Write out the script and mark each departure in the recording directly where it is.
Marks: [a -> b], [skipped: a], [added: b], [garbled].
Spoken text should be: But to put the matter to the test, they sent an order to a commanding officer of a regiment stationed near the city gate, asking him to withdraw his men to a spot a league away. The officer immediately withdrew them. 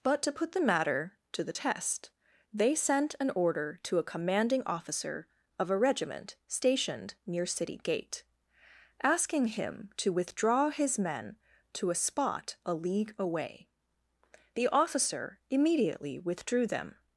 But to put the matter to the test, they sent an order to a commanding officer of a regiment stationed near [skipped: the] city gate, asking him to withdraw his men to a spot a league away. The officer immediately withdrew them.